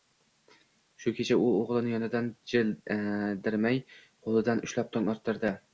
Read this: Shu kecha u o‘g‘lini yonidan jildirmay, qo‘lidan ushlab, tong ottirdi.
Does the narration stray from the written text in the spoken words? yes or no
no